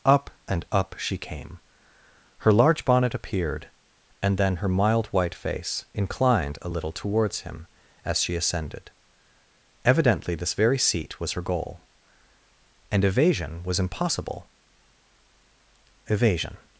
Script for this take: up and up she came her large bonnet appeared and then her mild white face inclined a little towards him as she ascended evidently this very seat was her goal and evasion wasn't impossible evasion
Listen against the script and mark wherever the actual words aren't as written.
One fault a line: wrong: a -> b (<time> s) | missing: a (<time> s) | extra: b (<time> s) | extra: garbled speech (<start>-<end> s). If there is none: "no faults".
wrong: wasn't -> was (13.6 s)